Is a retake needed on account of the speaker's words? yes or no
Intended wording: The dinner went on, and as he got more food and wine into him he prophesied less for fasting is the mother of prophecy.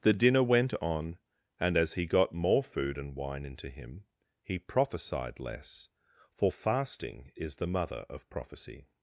no